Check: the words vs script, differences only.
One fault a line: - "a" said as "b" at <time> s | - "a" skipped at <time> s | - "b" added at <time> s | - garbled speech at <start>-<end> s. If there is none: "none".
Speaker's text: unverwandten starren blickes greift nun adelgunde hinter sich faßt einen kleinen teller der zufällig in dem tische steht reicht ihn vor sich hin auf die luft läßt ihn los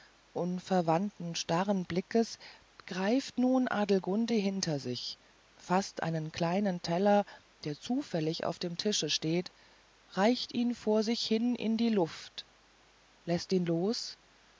- "in" said as "auf" at 8.4 s
- "auf" said as "in" at 11.5 s